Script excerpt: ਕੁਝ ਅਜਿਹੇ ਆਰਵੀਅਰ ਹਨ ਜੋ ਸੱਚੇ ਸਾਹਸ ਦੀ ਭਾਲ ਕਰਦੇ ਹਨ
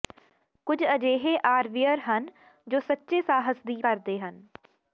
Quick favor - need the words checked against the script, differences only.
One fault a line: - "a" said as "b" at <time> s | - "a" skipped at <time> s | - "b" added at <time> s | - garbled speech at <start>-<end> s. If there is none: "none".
- "ਭਾਲ" skipped at 3.8 s